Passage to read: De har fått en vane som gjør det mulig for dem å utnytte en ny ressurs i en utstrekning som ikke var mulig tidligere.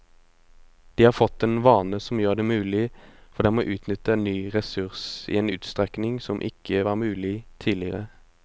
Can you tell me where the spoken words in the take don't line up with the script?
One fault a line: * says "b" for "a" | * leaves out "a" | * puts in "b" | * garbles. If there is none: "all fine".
all fine